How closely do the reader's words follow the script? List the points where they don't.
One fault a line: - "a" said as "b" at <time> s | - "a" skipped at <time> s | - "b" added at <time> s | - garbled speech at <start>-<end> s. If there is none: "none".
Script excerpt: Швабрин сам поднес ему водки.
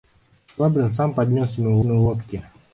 - "ему" added at 1.8 s